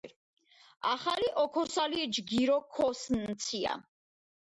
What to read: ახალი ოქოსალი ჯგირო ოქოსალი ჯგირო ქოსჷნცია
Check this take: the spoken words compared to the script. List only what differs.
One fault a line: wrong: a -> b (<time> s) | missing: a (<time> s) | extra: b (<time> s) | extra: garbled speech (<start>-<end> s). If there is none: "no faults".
missing: ოქოსალი ჯგირო (2.6 s)